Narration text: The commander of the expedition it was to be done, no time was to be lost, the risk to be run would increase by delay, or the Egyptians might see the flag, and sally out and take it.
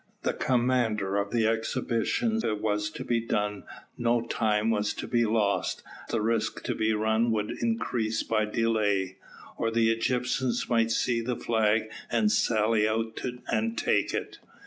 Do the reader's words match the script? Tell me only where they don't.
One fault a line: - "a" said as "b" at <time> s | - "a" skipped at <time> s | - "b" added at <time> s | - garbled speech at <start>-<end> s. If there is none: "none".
none